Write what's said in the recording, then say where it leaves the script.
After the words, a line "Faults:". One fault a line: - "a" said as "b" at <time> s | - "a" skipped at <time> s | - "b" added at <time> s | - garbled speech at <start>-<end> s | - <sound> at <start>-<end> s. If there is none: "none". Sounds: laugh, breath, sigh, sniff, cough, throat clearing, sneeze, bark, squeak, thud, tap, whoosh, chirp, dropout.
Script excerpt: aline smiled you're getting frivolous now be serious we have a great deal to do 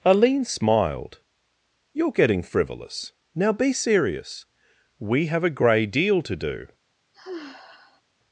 aline smiled you're getting frivolous now be serious we have a grey deal to do
Faults:
- "great" said as "grey" at 5.5 s
- sigh at 7.1-8.0 s